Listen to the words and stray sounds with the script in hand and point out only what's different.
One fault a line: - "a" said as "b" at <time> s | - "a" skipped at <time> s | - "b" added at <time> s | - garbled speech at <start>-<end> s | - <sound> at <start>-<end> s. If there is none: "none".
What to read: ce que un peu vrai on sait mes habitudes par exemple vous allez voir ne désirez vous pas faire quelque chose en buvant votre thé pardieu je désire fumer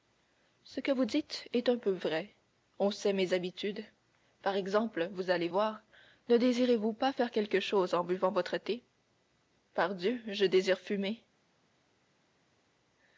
- "vous dites est" added at 0.9 s